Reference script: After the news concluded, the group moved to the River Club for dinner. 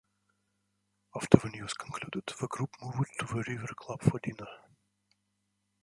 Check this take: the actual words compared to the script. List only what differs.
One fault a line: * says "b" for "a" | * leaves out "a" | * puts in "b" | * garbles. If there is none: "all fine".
all fine